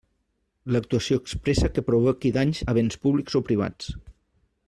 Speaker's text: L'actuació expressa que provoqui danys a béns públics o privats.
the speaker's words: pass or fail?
pass